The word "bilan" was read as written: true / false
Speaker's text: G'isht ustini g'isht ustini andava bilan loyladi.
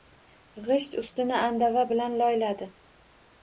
true